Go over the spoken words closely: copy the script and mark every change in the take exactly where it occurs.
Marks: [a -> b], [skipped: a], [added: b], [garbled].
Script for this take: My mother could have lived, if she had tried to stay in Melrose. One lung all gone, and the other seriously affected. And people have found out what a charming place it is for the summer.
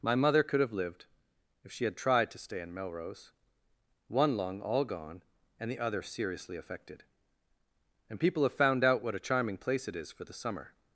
My mother could have lived, if she had tried to stay in Melrose. One lung all gone, and the other seriously affected. And people have found out what a charming place it is for the summer.